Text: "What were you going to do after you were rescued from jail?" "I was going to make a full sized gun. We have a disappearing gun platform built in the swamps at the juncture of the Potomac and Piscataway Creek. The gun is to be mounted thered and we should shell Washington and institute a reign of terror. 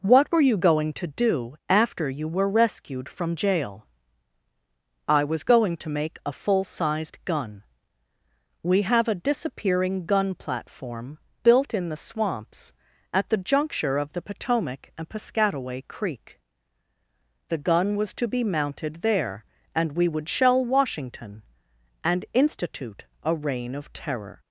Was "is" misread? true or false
true